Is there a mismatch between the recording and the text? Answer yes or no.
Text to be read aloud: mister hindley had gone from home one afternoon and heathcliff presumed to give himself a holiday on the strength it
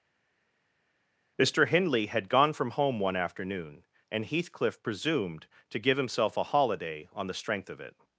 yes